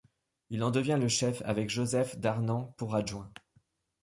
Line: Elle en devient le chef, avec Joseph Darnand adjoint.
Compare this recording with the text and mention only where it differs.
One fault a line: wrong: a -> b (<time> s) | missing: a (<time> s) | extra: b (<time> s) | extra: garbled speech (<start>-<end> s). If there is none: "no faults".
wrong: Elle -> Il (0.5 s)
extra: pour (2.8 s)